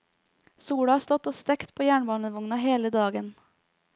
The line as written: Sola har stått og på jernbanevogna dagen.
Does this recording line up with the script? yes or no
no